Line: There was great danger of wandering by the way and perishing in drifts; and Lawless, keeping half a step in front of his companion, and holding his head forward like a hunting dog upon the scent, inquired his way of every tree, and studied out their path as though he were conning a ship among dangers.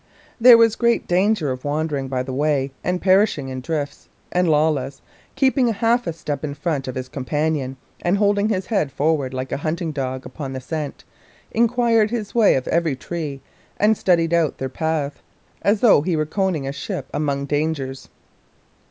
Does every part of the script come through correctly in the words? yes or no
yes